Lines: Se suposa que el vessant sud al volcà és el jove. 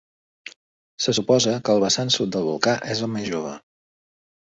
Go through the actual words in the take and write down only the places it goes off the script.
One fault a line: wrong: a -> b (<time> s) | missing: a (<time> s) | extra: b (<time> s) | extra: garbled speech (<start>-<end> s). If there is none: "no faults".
wrong: al -> del (2.3 s)
extra: més (3.1 s)